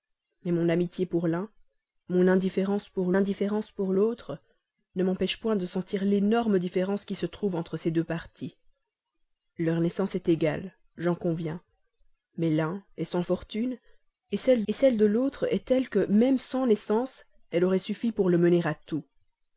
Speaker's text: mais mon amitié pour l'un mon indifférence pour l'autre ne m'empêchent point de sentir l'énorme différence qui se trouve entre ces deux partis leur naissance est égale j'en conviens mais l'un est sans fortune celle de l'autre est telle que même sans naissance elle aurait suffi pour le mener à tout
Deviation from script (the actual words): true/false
true